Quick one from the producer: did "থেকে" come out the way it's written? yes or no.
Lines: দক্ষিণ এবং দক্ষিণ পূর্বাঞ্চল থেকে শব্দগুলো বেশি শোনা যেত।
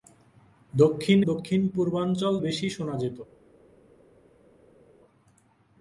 no